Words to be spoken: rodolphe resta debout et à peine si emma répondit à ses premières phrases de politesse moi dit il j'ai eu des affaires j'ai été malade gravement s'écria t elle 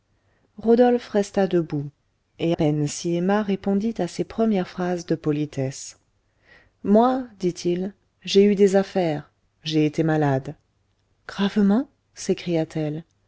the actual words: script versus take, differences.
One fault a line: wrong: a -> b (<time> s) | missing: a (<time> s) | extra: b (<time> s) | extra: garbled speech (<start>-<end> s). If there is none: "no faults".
missing: à (2.5 s)